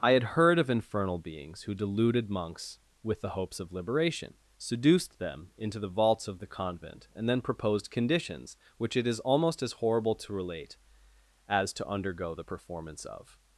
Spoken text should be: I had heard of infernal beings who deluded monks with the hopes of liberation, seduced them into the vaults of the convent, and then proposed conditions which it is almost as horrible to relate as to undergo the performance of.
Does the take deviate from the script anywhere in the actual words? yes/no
no